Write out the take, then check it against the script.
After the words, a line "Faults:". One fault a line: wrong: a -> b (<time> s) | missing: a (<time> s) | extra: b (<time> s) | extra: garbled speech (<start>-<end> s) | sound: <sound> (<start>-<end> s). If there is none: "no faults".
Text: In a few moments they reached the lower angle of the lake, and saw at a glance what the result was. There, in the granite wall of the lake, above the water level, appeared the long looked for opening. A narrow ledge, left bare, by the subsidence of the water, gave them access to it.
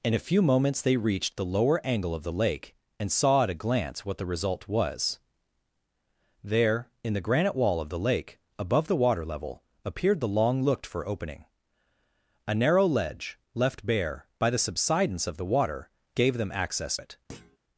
In a few moments they reached the lower angle of the lake, and saw at a glance what the result was. There, in the granite wall of the lake, above the water level, appeared the long looked for opening. A narrow ledge, left bare, by the subsidence of the water, gave them access it.
Faults:
missing: to (17.0 s)
sound: thud (17.3-17.6 s)